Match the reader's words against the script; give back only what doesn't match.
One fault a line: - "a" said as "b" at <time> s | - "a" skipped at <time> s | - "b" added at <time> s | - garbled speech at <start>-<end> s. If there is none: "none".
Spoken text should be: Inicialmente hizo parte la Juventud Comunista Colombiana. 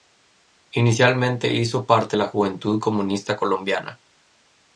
none